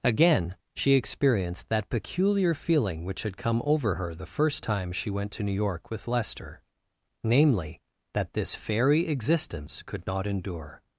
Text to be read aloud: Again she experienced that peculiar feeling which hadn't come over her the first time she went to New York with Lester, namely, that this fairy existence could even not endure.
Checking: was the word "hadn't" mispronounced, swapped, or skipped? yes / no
yes